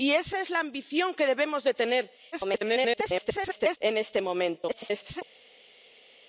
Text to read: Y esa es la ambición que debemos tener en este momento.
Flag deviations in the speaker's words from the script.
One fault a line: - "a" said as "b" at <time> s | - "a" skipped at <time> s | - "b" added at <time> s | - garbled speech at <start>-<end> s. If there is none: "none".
- garbled speech at 2.3-3.8 s
- garbled speech at 4.7-5.2 s